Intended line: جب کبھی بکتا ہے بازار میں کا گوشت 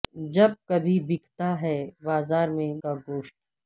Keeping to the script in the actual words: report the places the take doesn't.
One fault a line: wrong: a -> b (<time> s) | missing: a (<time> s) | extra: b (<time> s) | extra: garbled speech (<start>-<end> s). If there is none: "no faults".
no faults